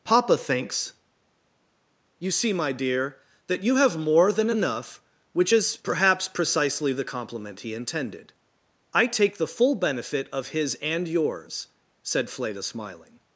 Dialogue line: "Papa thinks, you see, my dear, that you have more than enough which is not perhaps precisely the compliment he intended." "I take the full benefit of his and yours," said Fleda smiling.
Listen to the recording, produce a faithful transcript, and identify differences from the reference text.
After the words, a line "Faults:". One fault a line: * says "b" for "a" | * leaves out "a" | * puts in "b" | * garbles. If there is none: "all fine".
"Papa thinks, you see, my dear, that you have more than enough which is perhaps precisely the compliment he intended." "I take the full benefit of his and yours," said Fleda smiling.
Faults:
* leaves out "not"